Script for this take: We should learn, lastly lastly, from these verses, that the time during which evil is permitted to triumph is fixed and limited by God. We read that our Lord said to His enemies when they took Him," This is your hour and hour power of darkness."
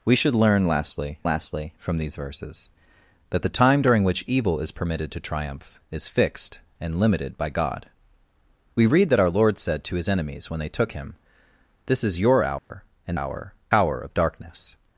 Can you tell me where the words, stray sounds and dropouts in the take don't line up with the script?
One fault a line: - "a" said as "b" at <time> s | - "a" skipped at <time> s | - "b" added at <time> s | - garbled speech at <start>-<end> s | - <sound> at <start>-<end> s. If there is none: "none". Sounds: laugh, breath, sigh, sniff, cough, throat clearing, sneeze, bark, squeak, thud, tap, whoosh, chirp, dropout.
- dropout at 12.6-12.7 s